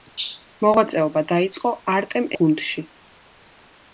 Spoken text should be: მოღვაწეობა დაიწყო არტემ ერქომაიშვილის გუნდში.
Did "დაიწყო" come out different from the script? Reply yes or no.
no